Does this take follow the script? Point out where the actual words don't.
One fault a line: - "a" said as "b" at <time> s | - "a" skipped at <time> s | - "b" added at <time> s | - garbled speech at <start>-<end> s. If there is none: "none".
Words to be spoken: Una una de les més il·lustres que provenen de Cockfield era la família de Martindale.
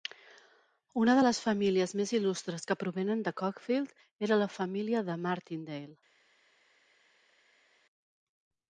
- "una" skipped at 1.1 s
- "famílies" added at 1.5 s